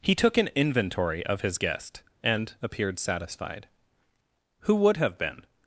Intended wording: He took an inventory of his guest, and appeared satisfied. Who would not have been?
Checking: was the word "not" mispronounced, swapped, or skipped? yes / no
yes